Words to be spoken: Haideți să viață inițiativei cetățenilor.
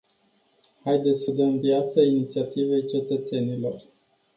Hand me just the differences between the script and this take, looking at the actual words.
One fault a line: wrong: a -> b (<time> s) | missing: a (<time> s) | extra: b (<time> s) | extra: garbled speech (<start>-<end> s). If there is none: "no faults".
extra: dăm (1.3 s)